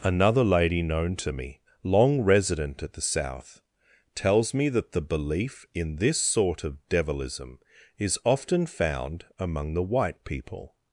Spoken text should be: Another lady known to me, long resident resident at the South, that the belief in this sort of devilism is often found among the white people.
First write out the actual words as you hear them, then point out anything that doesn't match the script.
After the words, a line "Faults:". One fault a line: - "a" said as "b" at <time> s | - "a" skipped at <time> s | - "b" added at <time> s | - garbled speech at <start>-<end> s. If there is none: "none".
Another lady known to me, long resident at the South, tells me that the belief in this sort of devilism is often found among the white people.
Faults:
- "resident" skipped at 2.8 s
- "tells me" added at 4.2 s